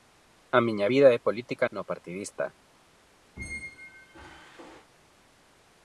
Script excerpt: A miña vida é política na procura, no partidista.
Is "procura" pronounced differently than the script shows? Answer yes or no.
yes